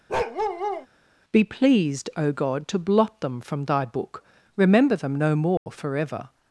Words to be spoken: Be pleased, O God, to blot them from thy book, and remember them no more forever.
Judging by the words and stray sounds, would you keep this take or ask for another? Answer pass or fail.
fail